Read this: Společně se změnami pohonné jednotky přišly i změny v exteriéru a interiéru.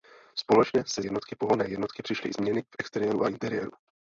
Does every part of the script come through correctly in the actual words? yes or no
no